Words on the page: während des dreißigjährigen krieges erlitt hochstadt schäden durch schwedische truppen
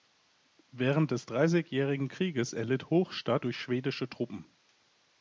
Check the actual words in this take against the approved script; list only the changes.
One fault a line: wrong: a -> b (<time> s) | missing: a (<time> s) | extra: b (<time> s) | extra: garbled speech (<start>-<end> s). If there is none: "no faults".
missing: schäden (3.5 s)